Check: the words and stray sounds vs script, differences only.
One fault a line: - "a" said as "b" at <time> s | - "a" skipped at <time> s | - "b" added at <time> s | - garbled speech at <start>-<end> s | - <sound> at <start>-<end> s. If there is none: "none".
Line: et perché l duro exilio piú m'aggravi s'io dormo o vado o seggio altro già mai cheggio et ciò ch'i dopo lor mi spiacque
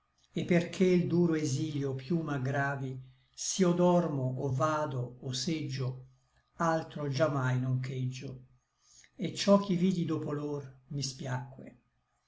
- "non" added at 7.6 s
- "vidi" added at 9.7 s